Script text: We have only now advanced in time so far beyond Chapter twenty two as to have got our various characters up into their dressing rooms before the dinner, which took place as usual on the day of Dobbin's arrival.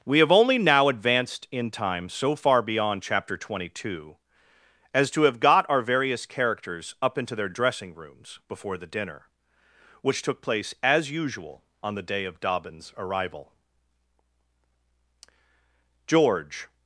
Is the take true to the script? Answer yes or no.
no